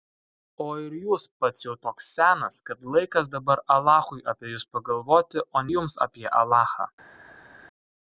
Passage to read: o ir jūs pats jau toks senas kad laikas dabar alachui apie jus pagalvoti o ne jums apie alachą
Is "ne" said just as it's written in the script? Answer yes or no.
no